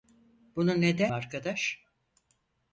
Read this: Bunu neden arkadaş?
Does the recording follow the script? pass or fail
pass